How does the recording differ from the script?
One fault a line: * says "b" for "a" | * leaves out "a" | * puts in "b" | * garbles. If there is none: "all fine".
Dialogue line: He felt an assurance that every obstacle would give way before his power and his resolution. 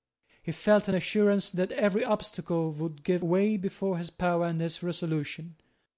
all fine